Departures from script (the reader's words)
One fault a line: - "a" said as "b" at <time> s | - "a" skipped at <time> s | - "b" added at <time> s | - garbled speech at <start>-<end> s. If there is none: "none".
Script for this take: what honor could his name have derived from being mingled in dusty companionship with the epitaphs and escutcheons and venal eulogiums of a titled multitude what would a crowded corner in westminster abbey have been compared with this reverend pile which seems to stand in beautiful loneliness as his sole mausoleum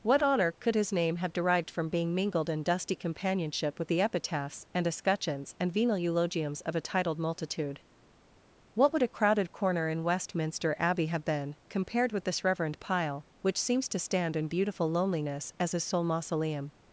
none